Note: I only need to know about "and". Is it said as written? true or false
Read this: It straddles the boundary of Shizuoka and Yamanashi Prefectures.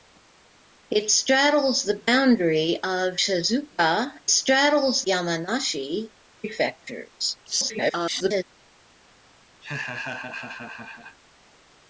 false